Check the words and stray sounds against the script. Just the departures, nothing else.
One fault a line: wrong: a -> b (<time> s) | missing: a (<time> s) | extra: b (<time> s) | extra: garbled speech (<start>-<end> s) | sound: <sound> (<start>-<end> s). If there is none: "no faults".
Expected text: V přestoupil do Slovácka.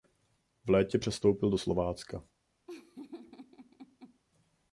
extra: létě (0.7 s)
sound: laugh (2.7-4.2 s)